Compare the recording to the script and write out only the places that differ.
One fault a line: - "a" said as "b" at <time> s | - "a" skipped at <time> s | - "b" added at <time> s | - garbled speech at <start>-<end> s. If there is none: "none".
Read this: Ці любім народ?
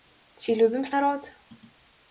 none